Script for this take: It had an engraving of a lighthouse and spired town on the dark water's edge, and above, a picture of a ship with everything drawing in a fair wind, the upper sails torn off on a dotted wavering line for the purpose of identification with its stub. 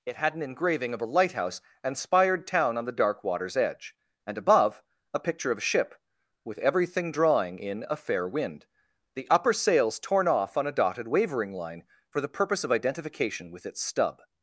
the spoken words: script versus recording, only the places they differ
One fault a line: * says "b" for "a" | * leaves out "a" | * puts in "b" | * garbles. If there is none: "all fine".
all fine